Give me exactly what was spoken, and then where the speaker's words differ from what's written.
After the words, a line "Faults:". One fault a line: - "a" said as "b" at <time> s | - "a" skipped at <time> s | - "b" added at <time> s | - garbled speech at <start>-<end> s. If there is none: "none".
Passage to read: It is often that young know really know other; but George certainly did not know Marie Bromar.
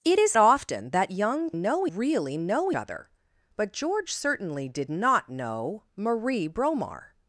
It is often that young know really know other; but George certainly did not know Marie Bromar.
Faults:
none